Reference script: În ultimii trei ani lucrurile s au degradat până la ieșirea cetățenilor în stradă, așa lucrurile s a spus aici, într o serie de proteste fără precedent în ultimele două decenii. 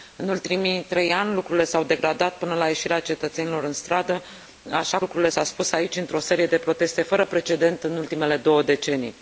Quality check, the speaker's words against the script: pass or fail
pass